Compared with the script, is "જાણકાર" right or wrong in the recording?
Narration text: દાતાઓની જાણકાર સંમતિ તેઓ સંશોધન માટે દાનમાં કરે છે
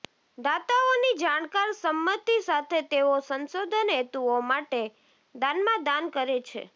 right